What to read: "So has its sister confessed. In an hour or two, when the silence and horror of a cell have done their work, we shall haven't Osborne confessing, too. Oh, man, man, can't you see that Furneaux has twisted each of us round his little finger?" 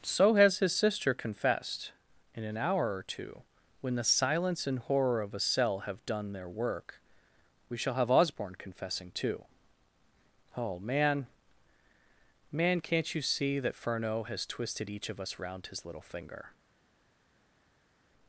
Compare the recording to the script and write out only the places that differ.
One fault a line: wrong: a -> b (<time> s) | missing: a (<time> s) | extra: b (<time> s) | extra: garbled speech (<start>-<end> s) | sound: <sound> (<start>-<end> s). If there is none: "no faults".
wrong: its -> his (0.6 s)
wrong: haven't -> have (8.0 s)